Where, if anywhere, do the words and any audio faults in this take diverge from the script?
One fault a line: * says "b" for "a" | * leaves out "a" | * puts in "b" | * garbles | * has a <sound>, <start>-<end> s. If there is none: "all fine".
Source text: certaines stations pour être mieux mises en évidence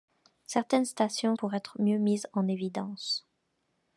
all fine